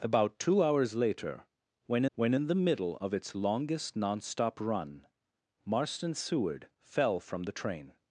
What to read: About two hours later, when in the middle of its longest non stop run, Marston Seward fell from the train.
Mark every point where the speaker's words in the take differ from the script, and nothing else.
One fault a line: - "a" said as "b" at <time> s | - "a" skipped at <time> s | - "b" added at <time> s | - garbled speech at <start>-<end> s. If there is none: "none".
- "when" added at 2.1 s